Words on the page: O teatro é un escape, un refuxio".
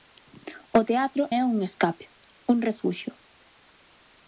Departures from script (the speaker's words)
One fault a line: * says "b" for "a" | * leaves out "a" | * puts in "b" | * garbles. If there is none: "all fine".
all fine